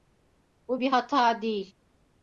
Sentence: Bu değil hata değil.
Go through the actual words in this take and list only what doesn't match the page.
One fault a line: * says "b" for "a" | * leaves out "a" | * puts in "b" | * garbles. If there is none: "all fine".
* says "bir" for "değil"